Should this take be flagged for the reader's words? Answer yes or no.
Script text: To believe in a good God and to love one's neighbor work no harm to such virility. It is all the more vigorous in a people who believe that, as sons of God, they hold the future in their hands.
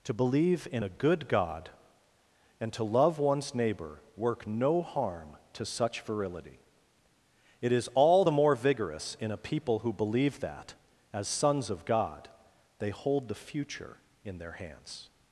no